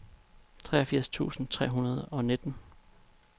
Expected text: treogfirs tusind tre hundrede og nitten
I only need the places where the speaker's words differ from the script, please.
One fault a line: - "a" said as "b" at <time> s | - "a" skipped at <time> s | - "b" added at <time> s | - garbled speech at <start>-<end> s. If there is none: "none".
none